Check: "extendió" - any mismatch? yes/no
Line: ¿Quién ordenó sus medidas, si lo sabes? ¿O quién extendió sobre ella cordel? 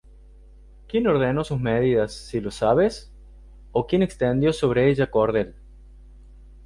no